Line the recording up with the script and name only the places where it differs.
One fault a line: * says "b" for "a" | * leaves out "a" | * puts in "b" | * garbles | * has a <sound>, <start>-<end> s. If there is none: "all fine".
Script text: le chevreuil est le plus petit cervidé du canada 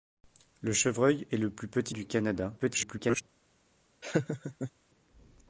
* leaves out "cervidé"
* garbles
* has a laugh, 4.0-4.7 s